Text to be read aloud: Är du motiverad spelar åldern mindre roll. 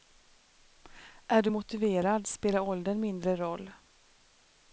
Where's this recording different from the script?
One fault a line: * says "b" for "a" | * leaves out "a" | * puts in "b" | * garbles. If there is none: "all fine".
all fine